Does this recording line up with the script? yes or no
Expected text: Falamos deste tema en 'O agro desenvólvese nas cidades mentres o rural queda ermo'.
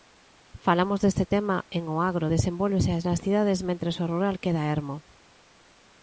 yes